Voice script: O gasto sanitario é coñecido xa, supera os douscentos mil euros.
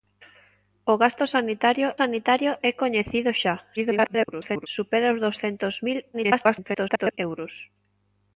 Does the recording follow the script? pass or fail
fail